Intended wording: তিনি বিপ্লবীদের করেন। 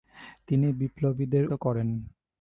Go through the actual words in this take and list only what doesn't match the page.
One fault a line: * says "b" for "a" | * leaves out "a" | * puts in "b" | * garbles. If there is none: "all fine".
all fine